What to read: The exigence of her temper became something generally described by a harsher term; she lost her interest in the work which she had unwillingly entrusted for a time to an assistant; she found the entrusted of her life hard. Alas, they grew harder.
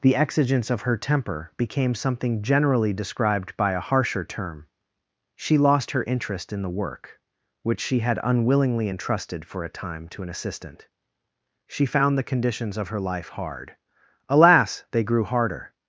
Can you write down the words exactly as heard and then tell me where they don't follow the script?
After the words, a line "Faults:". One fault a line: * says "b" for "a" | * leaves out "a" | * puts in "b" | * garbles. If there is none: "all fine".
The exigence of her temper became something generally described by a harsher term; she lost her interest in the work which she had unwillingly entrusted for a time to an assistant; she found the conditions of her life hard. Alas, they grew harder.
Faults:
* says "conditions" for "entrusted"